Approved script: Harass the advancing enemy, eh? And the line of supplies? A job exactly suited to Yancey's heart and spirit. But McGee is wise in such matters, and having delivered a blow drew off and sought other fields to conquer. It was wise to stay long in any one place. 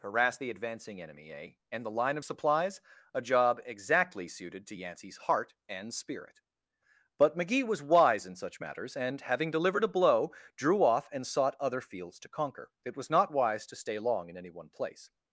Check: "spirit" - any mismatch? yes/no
no